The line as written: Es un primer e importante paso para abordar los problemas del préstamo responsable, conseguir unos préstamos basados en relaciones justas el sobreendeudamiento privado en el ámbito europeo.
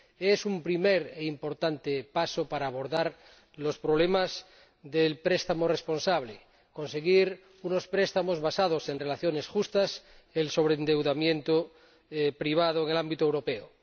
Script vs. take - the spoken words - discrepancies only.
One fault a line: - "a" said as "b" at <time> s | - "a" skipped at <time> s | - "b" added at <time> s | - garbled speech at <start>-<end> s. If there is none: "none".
none